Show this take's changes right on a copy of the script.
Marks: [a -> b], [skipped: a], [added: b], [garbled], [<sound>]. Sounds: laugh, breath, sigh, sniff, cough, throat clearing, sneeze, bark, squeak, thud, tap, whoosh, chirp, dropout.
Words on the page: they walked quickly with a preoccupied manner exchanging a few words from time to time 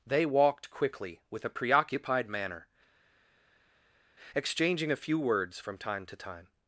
they walked quickly with a preoccupied manner exchanging a few words from time to time